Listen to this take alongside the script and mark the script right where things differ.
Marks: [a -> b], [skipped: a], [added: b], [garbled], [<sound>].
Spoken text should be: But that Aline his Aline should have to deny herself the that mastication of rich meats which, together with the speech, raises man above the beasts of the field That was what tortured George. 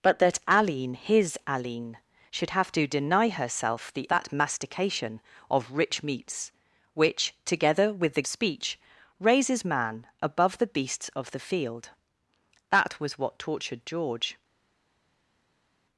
But that Aline his Aline should have to deny herself the that mastication of rich meats which, together with the speech, raises man above the beasts of the field That was what tortured George.